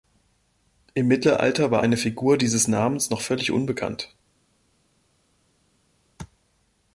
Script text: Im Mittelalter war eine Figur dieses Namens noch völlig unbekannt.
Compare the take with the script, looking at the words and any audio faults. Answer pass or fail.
pass